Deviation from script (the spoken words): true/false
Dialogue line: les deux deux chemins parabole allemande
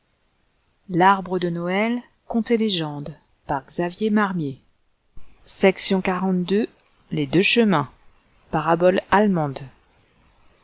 true